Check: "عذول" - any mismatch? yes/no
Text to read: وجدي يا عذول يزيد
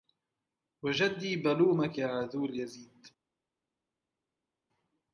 no